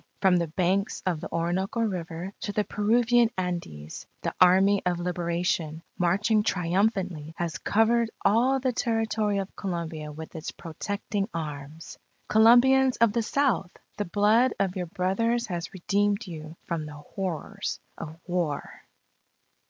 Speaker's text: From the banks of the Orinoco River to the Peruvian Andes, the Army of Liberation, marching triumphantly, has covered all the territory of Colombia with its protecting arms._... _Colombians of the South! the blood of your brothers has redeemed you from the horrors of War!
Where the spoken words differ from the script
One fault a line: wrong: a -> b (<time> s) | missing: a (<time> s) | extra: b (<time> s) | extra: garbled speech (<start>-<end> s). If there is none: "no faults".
no faults